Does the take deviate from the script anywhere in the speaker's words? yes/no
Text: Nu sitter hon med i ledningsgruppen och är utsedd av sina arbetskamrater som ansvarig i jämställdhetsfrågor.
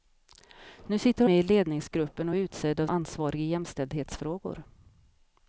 yes